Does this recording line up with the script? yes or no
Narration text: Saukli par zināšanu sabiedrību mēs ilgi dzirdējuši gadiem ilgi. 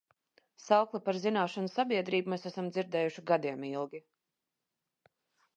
no